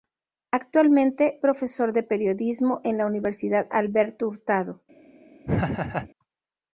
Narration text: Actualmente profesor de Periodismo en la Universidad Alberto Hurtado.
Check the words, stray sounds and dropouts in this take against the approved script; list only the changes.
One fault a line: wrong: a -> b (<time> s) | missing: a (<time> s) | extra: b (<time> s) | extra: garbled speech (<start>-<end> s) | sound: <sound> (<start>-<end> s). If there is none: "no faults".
sound: laugh (5.4-6.1 s)